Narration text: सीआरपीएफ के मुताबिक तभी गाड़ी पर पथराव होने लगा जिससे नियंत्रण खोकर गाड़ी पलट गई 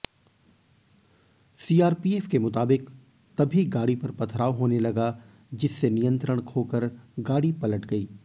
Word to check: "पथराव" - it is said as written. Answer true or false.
true